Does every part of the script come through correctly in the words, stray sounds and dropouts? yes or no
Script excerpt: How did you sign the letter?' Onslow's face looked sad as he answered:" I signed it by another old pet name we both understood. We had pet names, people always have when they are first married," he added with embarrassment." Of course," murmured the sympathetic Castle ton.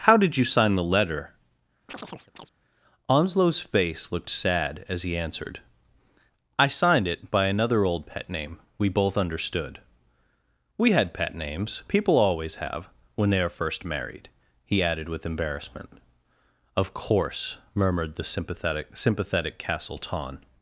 no